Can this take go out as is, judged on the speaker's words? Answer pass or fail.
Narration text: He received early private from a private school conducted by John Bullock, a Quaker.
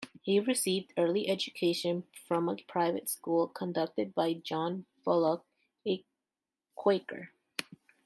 fail